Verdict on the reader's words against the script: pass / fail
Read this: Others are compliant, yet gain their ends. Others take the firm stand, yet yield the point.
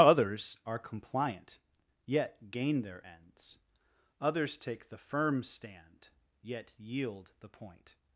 pass